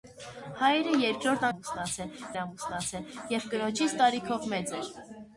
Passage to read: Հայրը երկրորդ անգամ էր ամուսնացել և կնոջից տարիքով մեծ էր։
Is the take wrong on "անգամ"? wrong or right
wrong